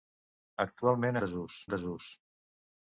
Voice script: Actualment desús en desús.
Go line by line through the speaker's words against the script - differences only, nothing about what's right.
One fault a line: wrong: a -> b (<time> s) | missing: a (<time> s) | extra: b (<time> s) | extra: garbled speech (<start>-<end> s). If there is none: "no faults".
no faults